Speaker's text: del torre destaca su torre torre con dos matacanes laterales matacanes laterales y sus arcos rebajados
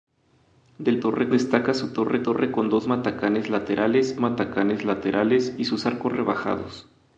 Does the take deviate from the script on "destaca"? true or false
false